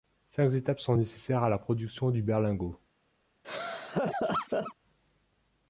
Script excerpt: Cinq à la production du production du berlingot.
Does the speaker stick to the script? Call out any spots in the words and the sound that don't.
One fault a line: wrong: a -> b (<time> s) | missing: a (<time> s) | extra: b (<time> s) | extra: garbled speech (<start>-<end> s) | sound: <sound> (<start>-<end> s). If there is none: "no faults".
extra: étapes sont nécessaires (0.5 s)
missing: production du (2.2 s)
sound: laugh (3.4-4.7 s)